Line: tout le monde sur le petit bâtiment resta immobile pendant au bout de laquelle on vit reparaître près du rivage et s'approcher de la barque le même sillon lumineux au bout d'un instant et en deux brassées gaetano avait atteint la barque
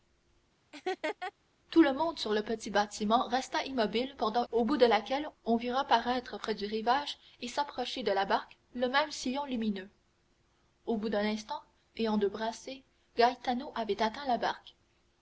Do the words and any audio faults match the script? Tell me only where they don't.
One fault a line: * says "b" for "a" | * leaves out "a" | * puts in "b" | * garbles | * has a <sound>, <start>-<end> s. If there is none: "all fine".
* has a laugh, 0.7-1.3 s